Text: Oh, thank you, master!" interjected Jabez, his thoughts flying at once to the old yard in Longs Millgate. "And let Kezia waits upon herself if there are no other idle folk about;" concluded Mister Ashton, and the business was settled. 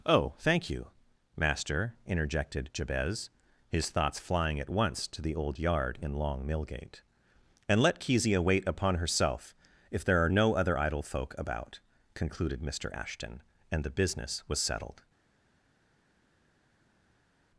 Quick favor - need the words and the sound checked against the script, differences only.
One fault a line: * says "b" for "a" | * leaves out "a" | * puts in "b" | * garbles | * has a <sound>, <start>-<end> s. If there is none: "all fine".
* says "Long" for "Longs"
* says "wait" for "waits"